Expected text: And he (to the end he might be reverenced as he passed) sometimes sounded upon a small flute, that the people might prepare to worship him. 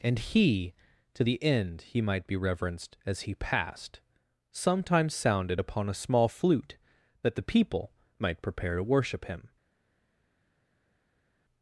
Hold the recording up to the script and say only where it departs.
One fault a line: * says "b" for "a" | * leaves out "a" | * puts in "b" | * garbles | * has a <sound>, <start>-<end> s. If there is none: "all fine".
all fine